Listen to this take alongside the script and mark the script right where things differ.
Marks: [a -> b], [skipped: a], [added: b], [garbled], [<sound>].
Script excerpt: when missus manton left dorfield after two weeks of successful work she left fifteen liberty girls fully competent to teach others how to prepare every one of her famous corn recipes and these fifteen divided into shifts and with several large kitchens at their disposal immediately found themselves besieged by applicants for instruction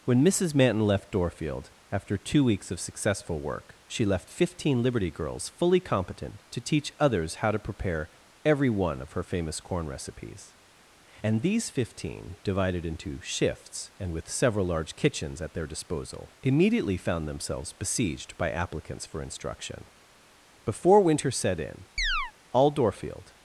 when missus manton left dorfield after two weeks of successful work she left fifteen liberty girls fully competent to teach others how to prepare every one of her famous corn recipes and these fifteen divided into shifts and with several large kitchens at their disposal immediately found themselves besieged by applicants for instruction [added: before winter set in all dorfield] [chirp]